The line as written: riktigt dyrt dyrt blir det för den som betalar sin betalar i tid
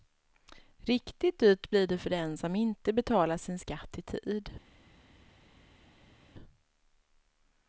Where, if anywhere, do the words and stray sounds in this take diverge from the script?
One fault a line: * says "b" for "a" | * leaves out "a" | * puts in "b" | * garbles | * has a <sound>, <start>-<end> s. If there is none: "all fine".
* leaves out "dyrt"
* puts in "inte"
* says "skatt" for "betalar"